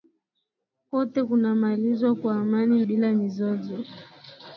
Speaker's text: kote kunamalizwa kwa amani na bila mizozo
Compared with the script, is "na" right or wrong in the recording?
wrong